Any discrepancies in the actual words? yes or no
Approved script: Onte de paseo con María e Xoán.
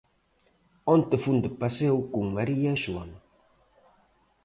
yes